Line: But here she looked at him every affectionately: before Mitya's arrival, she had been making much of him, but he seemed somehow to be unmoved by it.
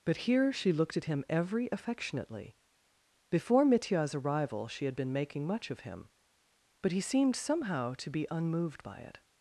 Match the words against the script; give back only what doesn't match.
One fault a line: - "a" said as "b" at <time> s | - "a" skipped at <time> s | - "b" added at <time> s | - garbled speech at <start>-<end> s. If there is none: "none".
none